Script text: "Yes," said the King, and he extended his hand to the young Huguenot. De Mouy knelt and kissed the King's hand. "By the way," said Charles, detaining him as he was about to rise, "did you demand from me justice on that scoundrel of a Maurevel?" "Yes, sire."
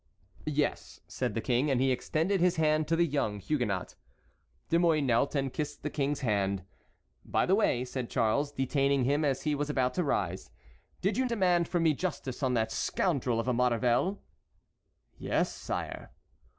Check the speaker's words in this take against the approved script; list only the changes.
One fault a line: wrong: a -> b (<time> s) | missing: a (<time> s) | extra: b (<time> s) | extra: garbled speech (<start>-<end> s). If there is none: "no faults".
no faults